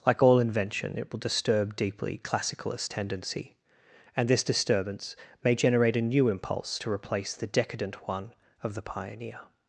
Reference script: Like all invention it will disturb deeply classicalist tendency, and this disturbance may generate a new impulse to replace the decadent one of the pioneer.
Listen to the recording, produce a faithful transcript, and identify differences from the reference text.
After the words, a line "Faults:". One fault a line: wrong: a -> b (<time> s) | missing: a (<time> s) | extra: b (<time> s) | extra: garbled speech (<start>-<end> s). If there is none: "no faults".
Like all invention it will disturb deeply classicalist tendency, and this disturbance may generate a new impulse to replace the decadent one of the pioneer.
Faults:
no faults